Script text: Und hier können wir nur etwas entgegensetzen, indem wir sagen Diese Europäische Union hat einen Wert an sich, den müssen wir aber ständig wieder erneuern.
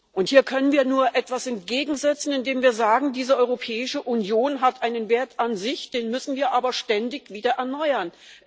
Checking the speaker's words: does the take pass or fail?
pass